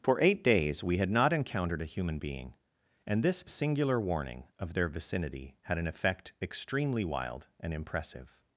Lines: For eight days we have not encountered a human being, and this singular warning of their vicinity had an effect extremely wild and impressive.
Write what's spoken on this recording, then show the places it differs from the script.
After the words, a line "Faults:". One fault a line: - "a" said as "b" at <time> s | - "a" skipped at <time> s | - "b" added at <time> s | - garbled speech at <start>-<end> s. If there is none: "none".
For eight days we had not encountered a human being, and this singular warning of their vicinity had an effect extremely wild and impressive.
Faults:
- "have" said as "had" at 1.0 s